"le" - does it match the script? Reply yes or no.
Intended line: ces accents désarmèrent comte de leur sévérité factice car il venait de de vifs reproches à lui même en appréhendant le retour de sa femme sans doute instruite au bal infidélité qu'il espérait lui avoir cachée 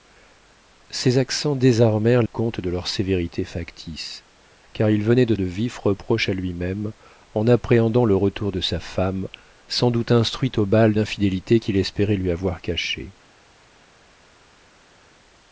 yes